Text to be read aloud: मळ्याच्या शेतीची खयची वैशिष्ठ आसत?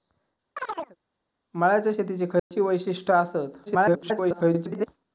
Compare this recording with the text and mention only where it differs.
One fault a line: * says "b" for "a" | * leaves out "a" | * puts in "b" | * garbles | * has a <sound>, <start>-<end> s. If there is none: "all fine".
* has a chirp, 0.6-1.0 s
* has a dropout, 2.4-2.5 s
* garbles